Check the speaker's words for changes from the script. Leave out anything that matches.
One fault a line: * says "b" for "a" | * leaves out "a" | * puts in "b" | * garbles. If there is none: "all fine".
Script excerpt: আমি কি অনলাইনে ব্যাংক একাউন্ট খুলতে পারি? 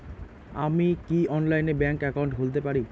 all fine